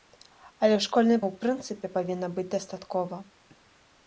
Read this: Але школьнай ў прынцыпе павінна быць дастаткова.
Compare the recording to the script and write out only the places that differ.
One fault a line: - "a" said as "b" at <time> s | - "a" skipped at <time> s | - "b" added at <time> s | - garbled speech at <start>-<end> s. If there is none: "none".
none